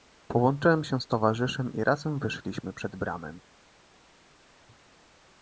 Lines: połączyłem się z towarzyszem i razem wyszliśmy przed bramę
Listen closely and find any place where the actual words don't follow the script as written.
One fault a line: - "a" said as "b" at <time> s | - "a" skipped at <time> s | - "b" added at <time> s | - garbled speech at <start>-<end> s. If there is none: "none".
none